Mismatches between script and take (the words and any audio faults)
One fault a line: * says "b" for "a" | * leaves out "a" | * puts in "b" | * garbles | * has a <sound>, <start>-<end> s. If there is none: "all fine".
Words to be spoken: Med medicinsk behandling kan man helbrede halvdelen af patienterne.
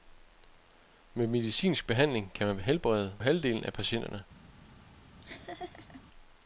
* has a laugh, 5.2-6.0 s